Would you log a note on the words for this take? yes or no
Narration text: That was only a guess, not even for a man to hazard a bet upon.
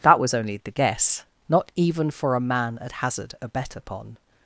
yes